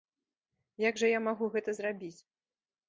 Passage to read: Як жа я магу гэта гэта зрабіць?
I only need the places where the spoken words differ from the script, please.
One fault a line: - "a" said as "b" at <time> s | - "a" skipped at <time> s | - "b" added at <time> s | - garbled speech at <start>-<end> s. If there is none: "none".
- "гэта" skipped at 1.7 s